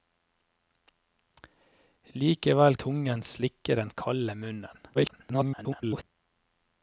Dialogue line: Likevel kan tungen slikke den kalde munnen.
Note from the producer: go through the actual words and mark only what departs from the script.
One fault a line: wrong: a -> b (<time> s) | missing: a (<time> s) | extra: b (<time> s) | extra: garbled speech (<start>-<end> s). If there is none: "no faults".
missing: kan (2.8 s)
extra: garbled speech (4.9-6.0 s)